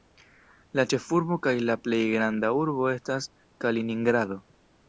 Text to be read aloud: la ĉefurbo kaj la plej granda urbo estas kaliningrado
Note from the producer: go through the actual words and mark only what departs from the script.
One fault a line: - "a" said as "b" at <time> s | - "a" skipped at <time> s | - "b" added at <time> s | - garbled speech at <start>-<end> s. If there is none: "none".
none